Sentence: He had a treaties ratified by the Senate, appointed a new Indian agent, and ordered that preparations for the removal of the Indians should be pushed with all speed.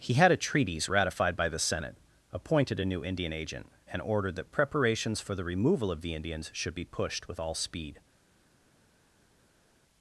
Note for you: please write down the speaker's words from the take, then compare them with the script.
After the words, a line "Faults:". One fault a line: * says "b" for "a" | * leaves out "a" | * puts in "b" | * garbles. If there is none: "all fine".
He had a treaties ratified by the Senate, appointed a new Indian agent, and ordered that preparations for the removal of the Indians should be pushed with all speed.
Faults:
all fine